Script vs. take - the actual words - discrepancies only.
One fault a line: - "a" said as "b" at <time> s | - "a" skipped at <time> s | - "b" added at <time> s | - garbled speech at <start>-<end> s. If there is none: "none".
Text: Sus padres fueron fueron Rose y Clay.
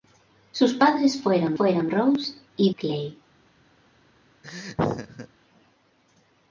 none